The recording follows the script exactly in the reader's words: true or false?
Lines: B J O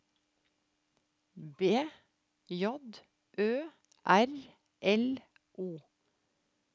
false